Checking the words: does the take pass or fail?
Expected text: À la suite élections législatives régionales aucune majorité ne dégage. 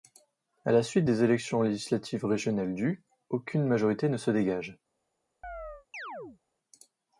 fail